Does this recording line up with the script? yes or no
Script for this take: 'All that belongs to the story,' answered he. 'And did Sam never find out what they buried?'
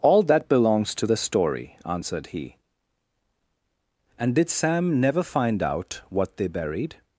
yes